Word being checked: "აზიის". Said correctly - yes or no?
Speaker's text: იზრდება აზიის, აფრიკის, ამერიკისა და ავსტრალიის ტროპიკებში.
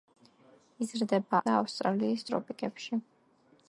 no